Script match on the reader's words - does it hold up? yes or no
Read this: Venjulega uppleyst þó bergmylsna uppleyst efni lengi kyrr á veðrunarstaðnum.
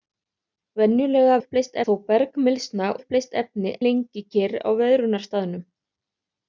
yes